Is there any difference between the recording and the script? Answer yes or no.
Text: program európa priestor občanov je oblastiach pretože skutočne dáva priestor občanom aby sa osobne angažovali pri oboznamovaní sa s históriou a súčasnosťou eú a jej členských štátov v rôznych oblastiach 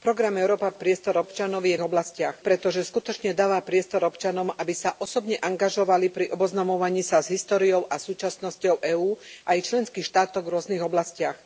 no